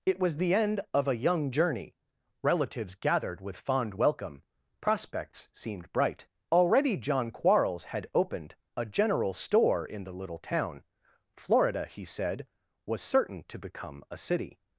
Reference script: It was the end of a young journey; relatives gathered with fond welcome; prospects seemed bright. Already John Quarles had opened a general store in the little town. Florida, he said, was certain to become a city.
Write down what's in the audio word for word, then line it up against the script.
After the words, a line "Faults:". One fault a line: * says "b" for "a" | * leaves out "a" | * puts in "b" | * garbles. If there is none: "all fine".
It was the end of a young journey; relatives gathered with fond welcome; prospects seemed bright. Already John Quarles had opened a general store in the little town. Florida, he said, was certain to become a city.
Faults:
all fine